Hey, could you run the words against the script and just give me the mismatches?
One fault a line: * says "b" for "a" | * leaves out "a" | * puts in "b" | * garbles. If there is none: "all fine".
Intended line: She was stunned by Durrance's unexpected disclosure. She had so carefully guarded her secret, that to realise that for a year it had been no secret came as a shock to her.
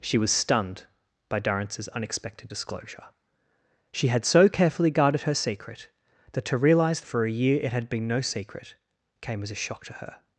* leaves out "that"